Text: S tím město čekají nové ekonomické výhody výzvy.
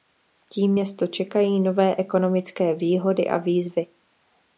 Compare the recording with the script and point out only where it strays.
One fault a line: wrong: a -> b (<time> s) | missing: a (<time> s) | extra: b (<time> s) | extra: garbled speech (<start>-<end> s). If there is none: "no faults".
extra: a (3.3 s)